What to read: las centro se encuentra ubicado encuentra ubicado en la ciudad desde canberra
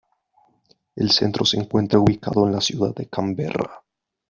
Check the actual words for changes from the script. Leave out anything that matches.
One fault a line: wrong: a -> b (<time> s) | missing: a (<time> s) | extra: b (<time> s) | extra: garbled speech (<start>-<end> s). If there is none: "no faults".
wrong: las -> el (0.9 s)
missing: encuentra ubicado (2.5 s)
wrong: desde -> de (3.0 s)